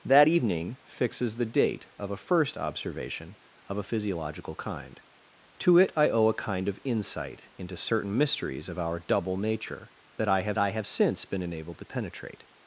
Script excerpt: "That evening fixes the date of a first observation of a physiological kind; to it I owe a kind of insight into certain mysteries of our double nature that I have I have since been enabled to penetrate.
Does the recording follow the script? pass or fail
pass